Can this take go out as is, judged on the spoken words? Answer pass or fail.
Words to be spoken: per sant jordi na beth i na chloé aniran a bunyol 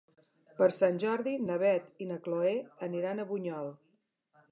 pass